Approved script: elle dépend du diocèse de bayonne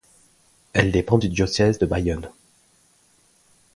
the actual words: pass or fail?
pass